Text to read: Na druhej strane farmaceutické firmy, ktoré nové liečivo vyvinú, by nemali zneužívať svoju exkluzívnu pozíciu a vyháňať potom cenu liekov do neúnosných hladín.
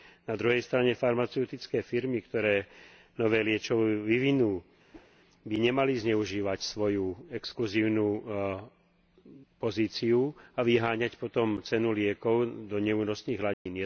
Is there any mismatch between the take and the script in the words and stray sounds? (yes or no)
yes